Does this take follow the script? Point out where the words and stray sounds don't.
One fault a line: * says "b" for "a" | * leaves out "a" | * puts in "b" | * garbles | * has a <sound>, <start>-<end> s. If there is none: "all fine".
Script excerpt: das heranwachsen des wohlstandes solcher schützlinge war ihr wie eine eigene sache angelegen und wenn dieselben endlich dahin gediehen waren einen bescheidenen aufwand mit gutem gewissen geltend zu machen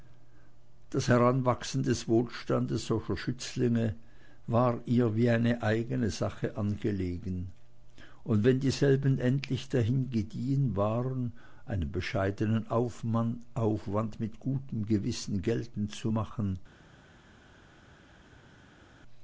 all fine